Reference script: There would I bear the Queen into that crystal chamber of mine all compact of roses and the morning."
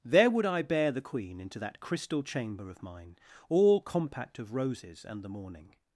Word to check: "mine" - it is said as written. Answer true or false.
true